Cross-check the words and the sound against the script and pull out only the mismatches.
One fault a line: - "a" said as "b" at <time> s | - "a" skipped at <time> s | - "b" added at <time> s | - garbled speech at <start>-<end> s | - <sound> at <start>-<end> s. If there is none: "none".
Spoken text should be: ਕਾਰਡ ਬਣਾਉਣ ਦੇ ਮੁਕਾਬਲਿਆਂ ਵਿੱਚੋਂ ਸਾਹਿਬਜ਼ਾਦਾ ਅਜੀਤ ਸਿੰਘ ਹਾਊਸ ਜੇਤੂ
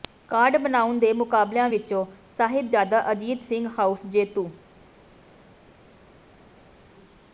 none